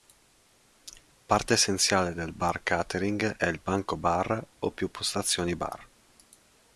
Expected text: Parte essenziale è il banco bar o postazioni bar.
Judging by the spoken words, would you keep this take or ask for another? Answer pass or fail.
fail